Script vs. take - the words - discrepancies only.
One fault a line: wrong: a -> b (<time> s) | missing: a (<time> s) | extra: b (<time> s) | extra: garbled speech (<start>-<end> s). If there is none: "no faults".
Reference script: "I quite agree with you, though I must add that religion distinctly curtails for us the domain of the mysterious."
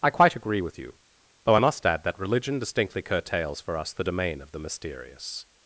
no faults